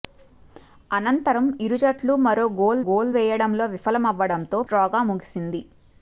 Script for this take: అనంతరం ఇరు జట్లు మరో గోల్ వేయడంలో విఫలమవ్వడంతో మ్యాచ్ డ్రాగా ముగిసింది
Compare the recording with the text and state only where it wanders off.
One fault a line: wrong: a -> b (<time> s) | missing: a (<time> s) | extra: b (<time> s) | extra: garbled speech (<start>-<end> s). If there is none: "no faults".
extra: గోల్ (2.9 s)
missing: మ్యాచ్ (4.6 s)